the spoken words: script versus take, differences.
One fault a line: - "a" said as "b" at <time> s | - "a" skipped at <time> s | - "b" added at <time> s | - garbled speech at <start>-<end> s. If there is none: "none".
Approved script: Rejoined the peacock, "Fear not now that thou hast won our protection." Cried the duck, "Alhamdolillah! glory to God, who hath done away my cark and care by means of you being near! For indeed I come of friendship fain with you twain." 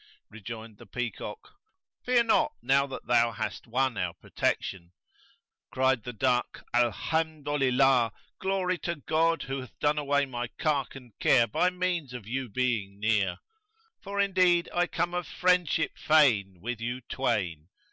none